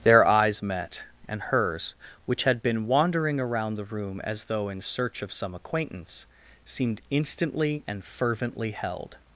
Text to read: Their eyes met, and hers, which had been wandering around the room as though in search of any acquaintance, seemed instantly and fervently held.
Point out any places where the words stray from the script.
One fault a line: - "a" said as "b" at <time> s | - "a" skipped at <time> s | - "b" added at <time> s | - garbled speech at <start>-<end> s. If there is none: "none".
- "any" said as "some" at 5.3 s